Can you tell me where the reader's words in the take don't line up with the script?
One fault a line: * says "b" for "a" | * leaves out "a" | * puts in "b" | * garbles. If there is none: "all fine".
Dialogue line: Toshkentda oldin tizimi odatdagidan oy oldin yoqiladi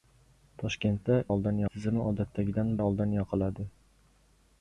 all fine